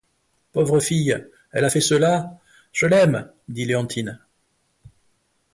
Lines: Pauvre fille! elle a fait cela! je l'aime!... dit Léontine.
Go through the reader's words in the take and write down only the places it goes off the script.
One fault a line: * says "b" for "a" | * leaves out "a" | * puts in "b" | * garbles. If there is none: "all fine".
all fine